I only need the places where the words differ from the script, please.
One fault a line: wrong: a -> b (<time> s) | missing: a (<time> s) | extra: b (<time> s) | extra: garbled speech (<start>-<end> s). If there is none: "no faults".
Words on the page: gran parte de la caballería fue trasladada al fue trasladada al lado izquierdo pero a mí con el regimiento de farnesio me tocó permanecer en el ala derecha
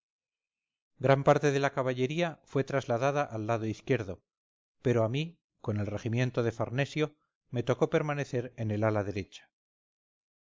missing: fue trasladada al (3.5 s)